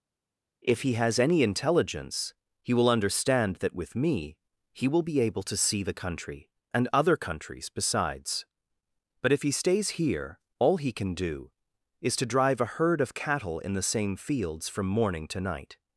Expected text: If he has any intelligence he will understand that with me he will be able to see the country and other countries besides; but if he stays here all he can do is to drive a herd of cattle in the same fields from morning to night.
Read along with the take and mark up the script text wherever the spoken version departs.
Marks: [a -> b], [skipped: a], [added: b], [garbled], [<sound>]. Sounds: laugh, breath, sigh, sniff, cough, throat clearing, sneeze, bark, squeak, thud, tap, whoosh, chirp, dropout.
If he has any intelligence he will understand that with me he will be able to see the country and other countries besides; but if he stays here all he can do is to drive a herd of cattle in the same fields from morning to night.